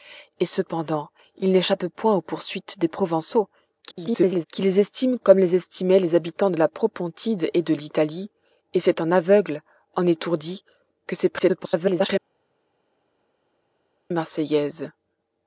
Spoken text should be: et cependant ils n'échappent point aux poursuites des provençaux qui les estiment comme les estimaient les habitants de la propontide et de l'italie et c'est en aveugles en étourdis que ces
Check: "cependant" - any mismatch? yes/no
no